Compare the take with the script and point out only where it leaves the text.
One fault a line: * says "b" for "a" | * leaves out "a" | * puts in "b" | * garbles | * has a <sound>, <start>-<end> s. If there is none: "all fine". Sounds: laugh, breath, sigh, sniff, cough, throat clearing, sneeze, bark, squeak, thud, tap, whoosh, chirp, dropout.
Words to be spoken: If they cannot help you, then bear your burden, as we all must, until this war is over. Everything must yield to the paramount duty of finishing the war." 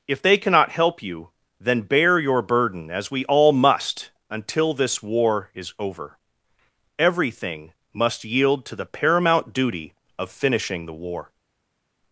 all fine